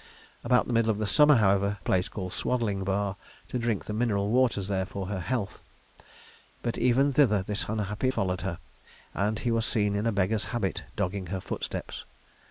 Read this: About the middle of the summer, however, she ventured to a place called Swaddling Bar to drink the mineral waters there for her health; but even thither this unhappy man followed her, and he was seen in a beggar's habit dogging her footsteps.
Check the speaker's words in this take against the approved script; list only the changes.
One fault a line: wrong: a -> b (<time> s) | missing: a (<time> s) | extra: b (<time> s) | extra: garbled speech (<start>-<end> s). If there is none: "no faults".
missing: she ventured to (1.8 s)
missing: man (8.1 s)